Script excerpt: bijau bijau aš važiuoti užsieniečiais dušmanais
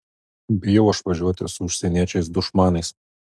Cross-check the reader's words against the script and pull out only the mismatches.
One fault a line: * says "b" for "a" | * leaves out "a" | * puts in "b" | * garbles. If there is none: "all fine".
* leaves out "bijau"
* puts in "su"